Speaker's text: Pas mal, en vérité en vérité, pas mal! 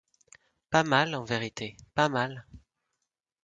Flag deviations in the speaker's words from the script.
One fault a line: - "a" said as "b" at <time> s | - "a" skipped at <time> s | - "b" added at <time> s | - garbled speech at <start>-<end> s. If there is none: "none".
- "en vérité" skipped at 1.8 s